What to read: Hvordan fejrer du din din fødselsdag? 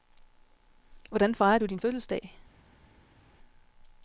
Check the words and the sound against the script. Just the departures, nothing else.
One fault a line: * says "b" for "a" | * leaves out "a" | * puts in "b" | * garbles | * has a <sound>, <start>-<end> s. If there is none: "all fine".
* leaves out "din"